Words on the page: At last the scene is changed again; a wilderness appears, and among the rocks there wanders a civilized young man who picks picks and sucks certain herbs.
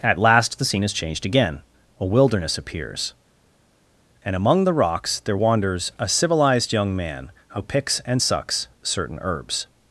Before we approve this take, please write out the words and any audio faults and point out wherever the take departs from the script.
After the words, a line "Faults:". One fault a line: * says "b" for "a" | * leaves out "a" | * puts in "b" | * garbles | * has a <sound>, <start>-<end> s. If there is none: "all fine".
At last the scene is changed again; a wilderness appears, and among the rocks there wanders a civilized young man who picks and sucks certain herbs.
Faults:
* leaves out "picks"